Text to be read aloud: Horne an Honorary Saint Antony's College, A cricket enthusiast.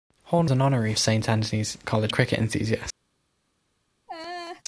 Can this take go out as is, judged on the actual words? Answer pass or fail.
pass